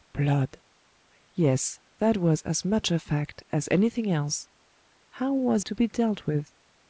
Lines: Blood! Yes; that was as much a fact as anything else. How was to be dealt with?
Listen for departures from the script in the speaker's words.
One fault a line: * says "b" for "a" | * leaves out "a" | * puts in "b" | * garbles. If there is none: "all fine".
all fine